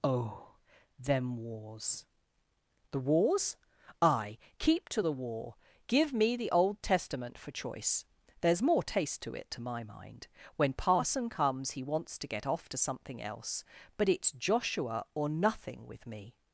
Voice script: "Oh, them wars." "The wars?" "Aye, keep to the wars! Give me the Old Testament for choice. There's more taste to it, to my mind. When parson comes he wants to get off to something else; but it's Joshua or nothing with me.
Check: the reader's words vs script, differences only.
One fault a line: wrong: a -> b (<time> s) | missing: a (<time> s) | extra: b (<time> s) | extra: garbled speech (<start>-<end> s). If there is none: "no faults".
wrong: wars -> war (5.1 s)